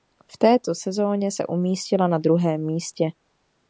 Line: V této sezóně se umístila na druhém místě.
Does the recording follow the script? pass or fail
pass